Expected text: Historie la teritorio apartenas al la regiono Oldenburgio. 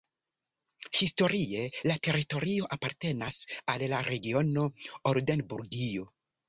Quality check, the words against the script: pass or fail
pass